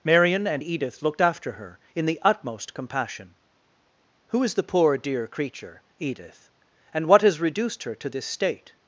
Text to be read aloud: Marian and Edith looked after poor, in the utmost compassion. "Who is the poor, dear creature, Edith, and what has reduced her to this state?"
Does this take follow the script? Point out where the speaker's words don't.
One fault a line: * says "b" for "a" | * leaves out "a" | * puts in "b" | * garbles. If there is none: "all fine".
* says "her" for "poor"